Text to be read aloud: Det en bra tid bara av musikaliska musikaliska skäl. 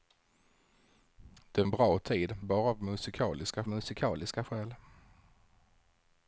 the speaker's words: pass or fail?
pass